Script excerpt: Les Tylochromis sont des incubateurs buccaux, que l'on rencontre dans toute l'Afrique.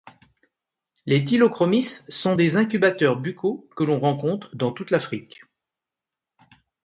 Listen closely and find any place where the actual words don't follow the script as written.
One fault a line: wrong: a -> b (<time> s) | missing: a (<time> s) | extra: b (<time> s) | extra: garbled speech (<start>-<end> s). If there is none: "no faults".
no faults